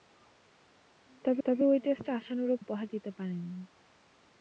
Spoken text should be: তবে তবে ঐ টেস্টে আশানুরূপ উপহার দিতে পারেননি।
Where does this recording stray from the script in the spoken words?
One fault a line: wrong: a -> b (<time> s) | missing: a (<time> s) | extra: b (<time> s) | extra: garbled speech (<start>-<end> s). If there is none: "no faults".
no faults